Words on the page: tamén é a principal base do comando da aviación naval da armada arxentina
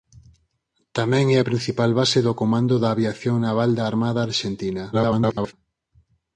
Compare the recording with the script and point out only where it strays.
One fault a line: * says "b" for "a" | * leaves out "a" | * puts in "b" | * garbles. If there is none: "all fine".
* garbles